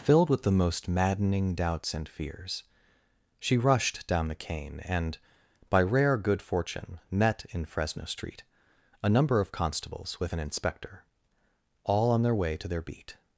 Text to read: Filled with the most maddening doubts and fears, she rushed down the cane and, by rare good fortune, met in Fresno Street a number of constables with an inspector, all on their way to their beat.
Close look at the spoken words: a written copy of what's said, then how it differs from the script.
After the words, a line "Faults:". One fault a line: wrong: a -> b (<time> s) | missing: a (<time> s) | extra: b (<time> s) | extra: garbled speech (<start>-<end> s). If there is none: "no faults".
Filled with the most maddening doubts and fears, she rushed down the cane and, by rare good fortune, met in Fresno Street a number of constables with an inspector, all on their way to their beat.
Faults:
no faults